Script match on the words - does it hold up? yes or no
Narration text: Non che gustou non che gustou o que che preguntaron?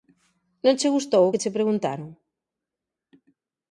no